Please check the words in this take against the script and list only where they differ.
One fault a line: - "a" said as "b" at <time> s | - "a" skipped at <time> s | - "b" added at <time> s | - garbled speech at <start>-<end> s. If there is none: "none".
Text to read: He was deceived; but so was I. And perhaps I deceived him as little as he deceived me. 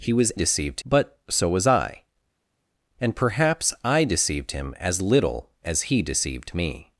none